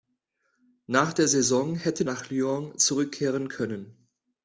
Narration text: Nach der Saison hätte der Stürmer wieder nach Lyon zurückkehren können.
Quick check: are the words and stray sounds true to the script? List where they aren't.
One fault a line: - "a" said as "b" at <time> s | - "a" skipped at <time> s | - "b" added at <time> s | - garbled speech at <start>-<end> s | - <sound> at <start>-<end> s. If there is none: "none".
- "der Stürmer wieder" skipped at 2.0 s